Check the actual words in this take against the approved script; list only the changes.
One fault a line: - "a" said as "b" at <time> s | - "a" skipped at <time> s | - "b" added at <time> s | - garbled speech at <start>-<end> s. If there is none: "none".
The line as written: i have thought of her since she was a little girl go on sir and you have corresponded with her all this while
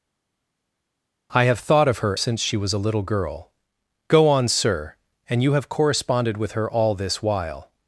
none